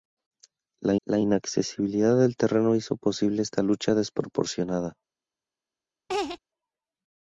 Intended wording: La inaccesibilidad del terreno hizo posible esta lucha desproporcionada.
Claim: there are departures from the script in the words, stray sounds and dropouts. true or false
true